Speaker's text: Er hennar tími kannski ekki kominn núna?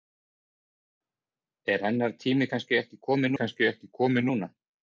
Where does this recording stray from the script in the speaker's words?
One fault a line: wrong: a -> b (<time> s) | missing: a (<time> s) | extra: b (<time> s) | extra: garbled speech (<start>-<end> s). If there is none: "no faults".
extra: kannski ekki kominn (3.4 s)